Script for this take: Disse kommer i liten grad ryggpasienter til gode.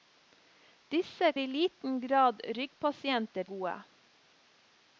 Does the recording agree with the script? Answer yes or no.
no